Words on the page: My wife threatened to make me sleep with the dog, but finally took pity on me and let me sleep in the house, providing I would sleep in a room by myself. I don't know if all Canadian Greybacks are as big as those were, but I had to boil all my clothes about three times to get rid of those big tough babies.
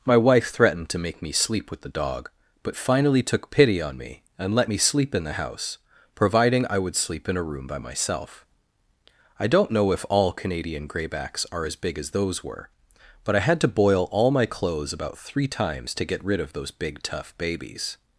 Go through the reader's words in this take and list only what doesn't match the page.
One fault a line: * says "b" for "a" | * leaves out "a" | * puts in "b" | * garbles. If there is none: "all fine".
all fine